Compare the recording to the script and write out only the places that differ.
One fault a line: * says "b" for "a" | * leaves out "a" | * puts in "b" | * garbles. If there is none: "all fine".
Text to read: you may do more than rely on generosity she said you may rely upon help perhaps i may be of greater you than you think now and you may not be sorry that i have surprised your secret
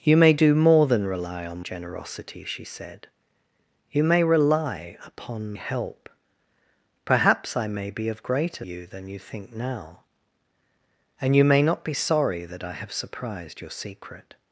all fine